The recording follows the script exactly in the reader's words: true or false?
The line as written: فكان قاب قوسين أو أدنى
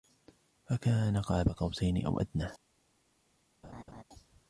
true